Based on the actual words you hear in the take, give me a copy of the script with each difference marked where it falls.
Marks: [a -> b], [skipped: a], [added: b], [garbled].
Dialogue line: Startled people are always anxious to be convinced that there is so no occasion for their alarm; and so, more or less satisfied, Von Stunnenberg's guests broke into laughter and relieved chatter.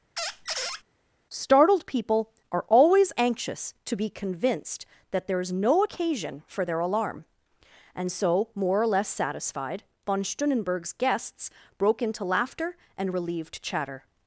Startled people are always anxious to be convinced that there is [skipped: so] no occasion for their alarm; and so, more or less satisfied, Von Stunnenberg's guests broke into laughter and relieved chatter.